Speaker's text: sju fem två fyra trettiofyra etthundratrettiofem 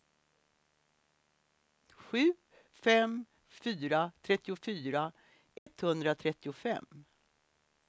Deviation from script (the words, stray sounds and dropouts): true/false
true